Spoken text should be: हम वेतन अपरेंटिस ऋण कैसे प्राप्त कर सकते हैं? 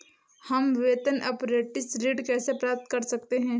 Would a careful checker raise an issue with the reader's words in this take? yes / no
no